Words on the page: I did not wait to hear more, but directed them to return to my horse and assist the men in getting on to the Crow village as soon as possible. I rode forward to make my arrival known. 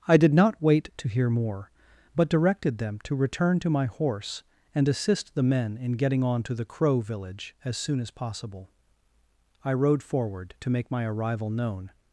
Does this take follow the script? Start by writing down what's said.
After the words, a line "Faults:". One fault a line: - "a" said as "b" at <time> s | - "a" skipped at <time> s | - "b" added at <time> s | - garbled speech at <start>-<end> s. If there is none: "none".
I did not wait to hear more, but directed them to return to my horse and assist the men in getting on to the Crow village as soon as possible. I rode forward to make my arrival known.
Faults:
none